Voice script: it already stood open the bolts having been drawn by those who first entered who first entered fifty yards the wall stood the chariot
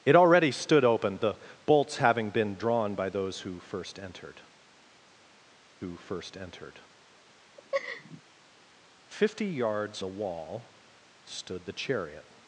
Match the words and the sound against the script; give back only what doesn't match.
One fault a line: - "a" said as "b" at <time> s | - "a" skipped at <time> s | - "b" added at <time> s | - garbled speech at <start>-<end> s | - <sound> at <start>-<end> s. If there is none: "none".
- laugh at 7.6-8.2 s